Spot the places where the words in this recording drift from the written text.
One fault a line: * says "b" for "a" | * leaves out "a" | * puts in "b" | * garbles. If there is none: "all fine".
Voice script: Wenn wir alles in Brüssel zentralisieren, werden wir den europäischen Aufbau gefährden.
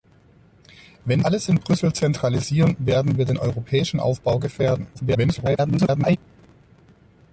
* leaves out "wir"
* garbles